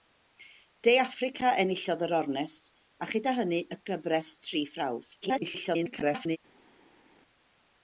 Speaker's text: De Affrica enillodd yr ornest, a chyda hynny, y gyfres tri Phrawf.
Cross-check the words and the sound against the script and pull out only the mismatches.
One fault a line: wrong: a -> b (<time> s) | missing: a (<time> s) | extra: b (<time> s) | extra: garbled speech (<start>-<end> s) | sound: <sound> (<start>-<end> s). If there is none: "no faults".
extra: garbled speech (5.2-6.4 s)